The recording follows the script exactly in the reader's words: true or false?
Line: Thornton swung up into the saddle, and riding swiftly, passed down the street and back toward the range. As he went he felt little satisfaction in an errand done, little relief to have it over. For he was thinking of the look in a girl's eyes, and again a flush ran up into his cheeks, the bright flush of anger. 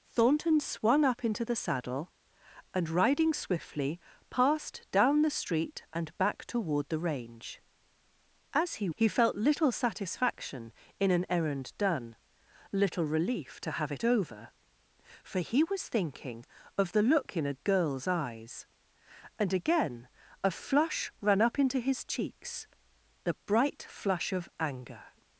false